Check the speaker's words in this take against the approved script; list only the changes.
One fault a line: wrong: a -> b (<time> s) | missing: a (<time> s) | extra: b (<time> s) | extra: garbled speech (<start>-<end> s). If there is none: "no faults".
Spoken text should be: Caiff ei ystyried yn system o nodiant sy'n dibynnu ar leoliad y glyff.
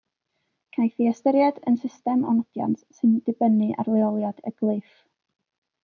no faults